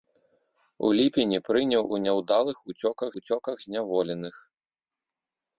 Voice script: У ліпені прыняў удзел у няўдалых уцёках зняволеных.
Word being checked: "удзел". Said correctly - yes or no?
no